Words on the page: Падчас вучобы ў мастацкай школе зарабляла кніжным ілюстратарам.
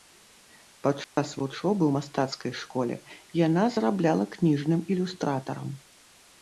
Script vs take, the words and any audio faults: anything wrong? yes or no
yes